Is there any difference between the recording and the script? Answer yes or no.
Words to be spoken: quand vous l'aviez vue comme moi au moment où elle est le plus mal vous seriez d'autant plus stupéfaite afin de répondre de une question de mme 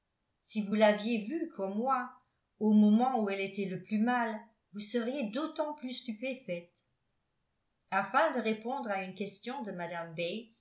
yes